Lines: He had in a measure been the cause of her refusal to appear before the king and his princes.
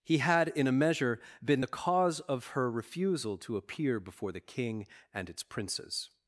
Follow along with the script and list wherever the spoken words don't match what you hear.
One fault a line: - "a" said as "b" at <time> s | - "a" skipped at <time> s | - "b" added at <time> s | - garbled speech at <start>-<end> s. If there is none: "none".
- "his" said as "its" at 5.3 s